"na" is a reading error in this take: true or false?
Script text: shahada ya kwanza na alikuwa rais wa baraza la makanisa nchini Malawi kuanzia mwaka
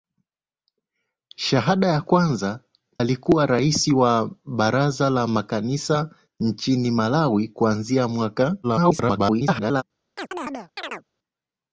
true